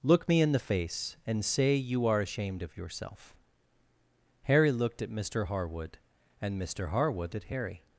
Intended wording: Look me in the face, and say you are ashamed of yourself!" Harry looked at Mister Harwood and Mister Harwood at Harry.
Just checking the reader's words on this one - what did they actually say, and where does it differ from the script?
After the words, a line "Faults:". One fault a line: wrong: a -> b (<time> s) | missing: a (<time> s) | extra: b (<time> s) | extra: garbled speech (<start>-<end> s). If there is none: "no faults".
Look me in the face, and say you are ashamed of yourself!" Harry looked at Mister Harwood and Mister Harwood at Harry.
Faults:
no faults